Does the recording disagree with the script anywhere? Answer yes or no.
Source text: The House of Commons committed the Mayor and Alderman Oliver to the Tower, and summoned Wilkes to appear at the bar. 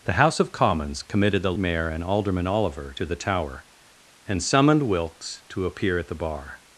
no